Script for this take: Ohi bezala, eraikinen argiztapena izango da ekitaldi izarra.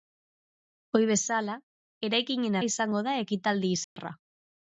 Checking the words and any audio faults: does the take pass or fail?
fail